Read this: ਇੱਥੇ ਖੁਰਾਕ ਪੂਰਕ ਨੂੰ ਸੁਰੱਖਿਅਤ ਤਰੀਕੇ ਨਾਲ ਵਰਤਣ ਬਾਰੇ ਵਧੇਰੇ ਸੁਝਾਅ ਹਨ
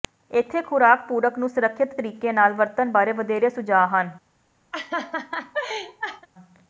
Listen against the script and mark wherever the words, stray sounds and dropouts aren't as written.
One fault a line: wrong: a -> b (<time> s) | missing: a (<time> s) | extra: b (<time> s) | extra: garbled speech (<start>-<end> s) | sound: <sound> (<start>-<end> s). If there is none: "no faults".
sound: laugh (4.7-6.3 s)